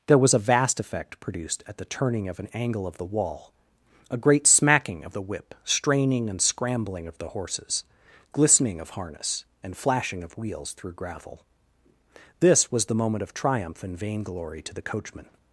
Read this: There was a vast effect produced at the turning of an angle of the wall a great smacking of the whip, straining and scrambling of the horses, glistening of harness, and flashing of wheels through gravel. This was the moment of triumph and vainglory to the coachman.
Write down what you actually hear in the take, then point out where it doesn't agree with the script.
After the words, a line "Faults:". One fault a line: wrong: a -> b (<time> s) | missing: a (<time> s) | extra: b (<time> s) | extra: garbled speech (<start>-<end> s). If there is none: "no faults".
There was a vast effect produced at the turning of an angle of the wall a great smacking of the whip, straining and scrambling of the horses, glistening of harness, and flashing of wheels through gravel. This was the moment of triumph and vainglory to the coachman.
Faults:
no faults